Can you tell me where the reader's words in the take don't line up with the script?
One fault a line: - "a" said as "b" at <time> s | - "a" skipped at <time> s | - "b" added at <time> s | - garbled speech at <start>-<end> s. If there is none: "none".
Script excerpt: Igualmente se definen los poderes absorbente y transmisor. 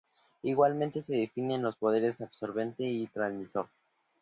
none